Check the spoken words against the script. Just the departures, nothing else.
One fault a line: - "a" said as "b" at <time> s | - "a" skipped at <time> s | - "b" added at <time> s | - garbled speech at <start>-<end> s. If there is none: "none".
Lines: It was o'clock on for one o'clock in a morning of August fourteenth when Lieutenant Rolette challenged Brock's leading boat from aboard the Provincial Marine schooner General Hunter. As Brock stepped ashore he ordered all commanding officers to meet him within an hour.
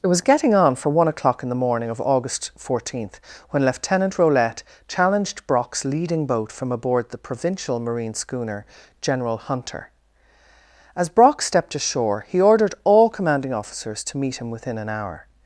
- "o'clock" said as "getting" at 0.2 s
- "a" said as "the" at 1.5 s